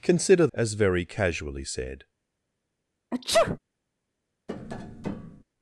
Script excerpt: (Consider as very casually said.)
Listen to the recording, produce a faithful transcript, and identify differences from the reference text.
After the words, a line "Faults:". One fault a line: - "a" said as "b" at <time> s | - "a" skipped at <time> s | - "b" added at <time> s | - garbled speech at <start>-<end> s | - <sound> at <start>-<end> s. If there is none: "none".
(Consider as very casually said.)
Faults:
- sneeze at 3.1-3.6 s
- tap at 4.5-5.4 s